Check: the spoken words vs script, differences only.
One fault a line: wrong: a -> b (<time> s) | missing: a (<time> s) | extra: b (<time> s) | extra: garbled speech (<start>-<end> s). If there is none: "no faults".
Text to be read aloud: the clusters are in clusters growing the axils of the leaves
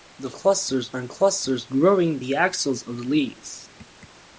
no faults